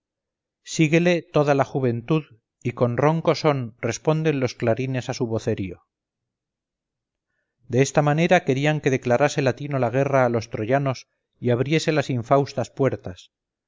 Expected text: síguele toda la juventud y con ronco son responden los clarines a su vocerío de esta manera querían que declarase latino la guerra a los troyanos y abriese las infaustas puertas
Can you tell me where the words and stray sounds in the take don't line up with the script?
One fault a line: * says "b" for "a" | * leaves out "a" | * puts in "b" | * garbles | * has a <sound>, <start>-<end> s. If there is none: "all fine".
all fine